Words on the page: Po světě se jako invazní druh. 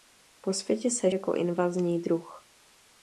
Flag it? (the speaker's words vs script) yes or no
no